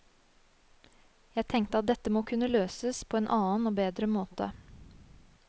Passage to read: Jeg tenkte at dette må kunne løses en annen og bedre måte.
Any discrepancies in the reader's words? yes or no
yes